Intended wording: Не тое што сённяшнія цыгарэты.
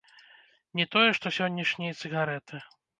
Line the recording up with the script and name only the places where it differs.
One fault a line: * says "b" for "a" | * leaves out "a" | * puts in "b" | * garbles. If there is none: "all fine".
all fine